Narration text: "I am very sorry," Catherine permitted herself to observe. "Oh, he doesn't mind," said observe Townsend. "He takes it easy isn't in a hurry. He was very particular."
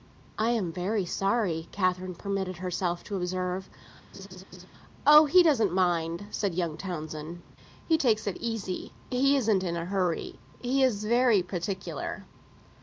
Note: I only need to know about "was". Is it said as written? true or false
false